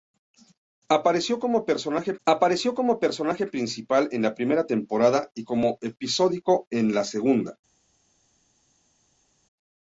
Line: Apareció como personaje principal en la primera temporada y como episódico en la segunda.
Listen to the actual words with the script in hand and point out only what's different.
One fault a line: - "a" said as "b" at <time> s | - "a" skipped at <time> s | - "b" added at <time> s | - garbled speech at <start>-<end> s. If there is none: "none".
- "apareció como personaje" added at 2.3 s